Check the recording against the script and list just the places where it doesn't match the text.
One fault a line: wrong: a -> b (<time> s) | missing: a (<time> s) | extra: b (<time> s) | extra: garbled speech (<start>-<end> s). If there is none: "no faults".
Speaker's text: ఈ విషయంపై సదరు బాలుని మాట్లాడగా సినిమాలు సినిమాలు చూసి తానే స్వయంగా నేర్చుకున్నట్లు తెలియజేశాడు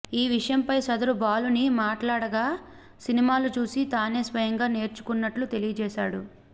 missing: సినిమాలు (3.5 s)